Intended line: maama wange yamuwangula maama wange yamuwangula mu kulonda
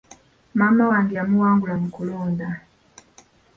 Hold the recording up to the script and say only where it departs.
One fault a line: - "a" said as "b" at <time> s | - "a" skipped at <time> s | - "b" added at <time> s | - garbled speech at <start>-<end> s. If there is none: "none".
- "maama wange yamuwangula" skipped at 1.7 s